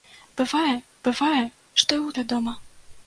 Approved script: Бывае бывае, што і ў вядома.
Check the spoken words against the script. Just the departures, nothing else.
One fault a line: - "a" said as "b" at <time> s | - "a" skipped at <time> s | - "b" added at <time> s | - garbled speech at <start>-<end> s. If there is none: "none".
none